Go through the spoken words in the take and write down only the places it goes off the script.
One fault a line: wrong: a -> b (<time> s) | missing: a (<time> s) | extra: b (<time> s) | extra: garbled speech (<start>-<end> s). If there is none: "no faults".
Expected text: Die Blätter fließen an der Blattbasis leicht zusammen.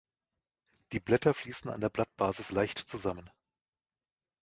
no faults